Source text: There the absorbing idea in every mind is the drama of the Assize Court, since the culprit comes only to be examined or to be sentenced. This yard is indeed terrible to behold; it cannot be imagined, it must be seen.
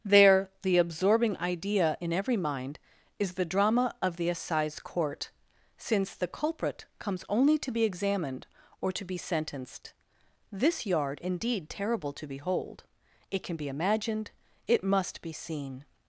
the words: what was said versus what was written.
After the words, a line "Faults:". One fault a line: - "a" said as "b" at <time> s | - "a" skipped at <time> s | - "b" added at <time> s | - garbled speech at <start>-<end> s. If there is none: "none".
There the absorbing idea in every mind is the drama of the Assize Court, since the culprit comes only to be examined or to be sentenced. This yard indeed terrible to behold; it can be imagined, it must be seen.
Faults:
- "is" skipped at 11.2 s
- "cannot" said as "can" at 13.4 s